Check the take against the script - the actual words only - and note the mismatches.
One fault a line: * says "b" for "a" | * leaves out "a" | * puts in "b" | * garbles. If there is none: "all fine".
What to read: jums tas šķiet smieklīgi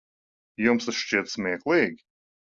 all fine